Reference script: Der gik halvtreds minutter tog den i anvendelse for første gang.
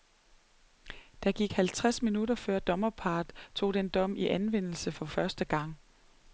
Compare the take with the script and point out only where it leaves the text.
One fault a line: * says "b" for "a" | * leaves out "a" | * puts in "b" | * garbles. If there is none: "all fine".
* puts in "før dommerparret"
* puts in "dom"